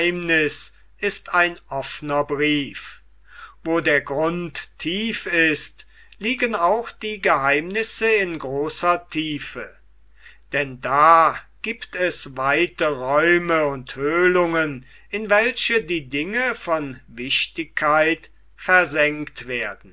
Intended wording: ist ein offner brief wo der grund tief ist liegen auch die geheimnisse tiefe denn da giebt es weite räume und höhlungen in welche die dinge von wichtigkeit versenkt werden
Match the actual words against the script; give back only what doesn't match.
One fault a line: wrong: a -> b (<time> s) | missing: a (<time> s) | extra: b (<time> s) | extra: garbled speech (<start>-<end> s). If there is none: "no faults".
extra: in großer (8.1 s)